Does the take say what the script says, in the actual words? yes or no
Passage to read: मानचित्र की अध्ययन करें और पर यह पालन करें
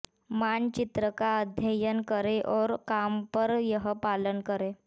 no